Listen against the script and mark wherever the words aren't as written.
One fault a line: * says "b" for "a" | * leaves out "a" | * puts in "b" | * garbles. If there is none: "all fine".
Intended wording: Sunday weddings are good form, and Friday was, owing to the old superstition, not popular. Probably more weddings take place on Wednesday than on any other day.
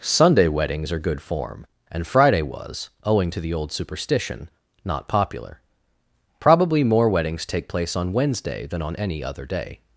all fine